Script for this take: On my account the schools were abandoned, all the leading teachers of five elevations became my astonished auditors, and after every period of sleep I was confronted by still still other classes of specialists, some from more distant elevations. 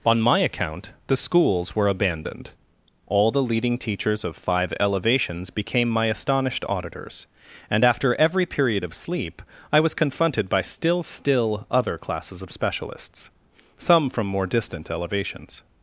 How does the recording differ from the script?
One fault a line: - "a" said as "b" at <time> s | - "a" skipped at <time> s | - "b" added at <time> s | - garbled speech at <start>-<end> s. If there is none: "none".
none